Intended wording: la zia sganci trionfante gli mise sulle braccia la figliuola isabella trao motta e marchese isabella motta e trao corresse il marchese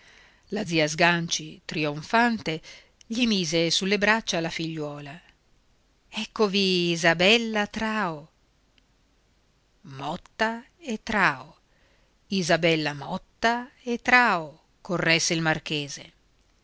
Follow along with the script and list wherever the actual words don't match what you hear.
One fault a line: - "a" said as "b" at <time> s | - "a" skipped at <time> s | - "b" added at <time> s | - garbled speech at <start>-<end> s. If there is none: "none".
- "eccovi" added at 6.1 s
- "marchese" said as "trao" at 11.0 s